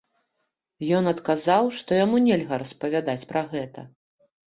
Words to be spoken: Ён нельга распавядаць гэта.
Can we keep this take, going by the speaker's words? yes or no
no